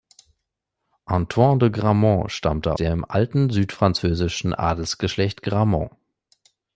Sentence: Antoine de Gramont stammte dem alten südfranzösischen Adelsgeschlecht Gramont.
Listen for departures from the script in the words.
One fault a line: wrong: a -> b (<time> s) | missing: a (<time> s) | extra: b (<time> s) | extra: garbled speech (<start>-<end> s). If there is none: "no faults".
no faults